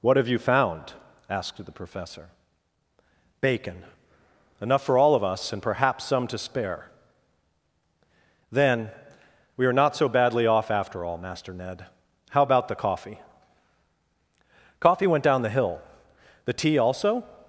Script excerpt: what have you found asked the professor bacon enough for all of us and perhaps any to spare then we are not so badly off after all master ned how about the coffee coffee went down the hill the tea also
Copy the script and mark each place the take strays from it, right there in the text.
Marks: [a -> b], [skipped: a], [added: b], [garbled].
what have you found asked the professor bacon enough for all of us and perhaps [any -> some] to spare then we are not so badly off after all master ned how about the coffee coffee went down the hill the tea also